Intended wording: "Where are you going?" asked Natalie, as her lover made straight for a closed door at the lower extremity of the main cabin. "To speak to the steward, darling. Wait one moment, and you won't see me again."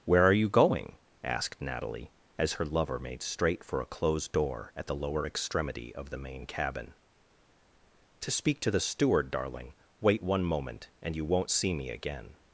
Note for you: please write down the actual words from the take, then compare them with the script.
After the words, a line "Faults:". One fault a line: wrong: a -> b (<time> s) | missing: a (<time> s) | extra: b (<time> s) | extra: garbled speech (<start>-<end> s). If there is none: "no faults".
"Where are you going?" asked Natalie, as her lover made straight for a closed door at the lower extremity of the main cabin. "To speak to the steward, darling. Wait one moment, and you won't see me again."
Faults:
no faults